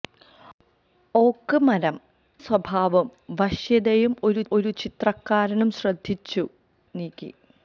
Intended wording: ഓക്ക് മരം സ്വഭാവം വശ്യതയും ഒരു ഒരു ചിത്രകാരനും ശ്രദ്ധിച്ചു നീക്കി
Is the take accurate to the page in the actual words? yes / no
yes